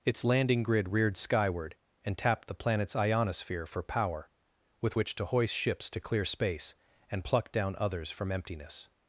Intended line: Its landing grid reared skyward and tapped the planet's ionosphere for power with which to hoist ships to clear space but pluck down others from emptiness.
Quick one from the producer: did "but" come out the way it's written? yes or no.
no